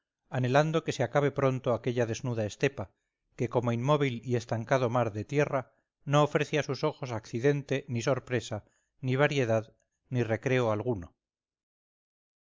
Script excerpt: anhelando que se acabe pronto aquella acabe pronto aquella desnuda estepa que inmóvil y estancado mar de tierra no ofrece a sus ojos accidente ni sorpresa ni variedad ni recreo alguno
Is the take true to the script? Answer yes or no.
no